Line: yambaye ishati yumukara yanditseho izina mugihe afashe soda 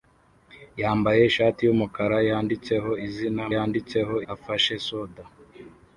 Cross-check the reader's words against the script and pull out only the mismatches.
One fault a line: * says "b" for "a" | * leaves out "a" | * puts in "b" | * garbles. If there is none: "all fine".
* says "yanditseho" for "mugihe"